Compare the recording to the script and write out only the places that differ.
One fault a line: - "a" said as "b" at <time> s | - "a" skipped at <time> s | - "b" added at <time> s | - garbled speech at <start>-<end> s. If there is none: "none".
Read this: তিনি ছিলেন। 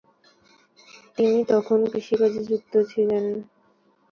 - "তখন কৃষিকাজে যুক্ত" added at 1.5 s